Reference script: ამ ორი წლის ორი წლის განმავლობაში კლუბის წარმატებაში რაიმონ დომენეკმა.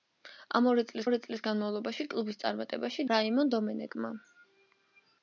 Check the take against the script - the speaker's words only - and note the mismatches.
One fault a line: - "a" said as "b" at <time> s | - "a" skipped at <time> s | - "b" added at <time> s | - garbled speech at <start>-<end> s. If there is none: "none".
none